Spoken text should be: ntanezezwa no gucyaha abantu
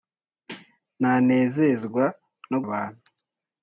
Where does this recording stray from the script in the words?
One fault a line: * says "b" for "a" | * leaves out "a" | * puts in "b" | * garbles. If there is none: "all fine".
* leaves out "gucyaha"